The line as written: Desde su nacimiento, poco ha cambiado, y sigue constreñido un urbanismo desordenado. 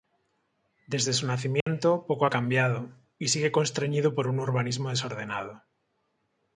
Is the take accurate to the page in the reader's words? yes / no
no